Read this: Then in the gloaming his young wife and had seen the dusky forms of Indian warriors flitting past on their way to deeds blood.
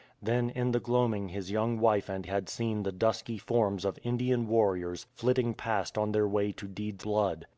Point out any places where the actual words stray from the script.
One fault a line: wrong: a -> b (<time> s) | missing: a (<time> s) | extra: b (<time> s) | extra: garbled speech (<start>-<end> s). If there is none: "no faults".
no faults